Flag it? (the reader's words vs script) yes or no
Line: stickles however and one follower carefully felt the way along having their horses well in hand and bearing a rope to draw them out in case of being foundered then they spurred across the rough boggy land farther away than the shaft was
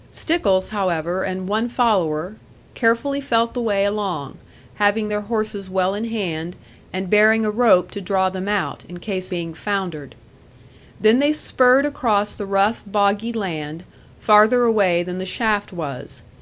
yes